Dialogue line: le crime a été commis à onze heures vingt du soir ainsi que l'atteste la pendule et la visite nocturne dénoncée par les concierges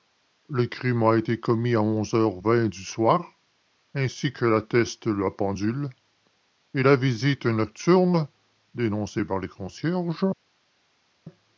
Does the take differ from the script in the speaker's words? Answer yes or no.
no